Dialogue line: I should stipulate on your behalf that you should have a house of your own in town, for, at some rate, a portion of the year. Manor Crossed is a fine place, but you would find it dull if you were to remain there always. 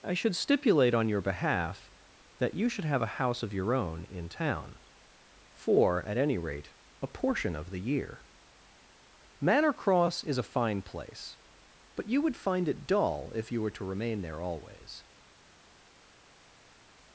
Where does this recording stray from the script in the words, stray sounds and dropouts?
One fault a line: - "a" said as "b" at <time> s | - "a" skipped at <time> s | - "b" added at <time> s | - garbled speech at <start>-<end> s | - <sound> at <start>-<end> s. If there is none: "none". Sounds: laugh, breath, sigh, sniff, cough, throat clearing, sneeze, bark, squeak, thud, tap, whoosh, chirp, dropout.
- "some" said as "any" at 6.2 s
- "Crossed" said as "Cross" at 9.7 s